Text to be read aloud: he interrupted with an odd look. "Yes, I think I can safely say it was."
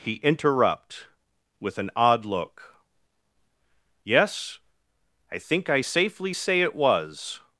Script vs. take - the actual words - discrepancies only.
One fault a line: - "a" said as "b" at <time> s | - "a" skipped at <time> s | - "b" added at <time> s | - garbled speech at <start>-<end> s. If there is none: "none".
- "interrupted" said as "interrupt" at 0.2 s
- "can" skipped at 5.8 s